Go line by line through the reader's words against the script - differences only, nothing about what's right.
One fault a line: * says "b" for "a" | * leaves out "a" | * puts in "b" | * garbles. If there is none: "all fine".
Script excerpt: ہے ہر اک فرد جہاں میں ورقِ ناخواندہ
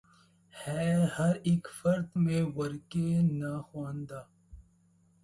* leaves out "جہاں"